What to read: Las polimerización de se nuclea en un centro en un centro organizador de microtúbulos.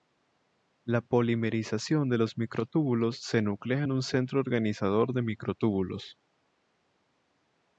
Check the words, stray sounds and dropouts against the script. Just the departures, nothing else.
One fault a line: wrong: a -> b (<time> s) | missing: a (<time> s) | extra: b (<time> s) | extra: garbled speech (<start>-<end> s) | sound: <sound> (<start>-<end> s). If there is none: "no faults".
wrong: Las -> La (0.8 s)
extra: los microtúbulos (2.2 s)
missing: en un centro (4.4 s)